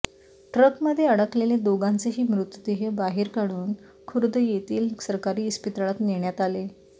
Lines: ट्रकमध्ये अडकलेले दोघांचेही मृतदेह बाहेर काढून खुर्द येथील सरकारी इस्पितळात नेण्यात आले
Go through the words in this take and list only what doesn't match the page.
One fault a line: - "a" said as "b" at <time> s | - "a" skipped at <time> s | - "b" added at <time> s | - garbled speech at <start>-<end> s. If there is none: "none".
none